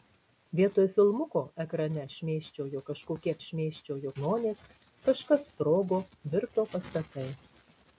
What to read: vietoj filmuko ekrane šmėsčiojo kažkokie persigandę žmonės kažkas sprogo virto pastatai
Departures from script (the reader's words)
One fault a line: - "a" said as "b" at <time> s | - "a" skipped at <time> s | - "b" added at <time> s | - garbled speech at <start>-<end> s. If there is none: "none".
- "persigandę" said as "šmėsčiojo" at 3.5 s